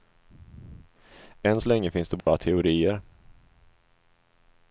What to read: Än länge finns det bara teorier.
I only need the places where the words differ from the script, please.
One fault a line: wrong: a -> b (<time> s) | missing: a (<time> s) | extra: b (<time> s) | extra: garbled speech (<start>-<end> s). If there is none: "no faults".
extra: så (1.6 s)